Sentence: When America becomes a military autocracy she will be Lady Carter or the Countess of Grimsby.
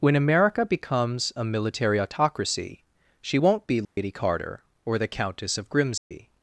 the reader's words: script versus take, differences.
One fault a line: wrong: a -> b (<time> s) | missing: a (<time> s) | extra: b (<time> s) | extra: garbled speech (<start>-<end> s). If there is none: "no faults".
wrong: will -> won't (3.3 s)